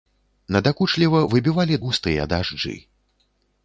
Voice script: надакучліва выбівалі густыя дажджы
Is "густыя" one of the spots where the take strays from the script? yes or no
no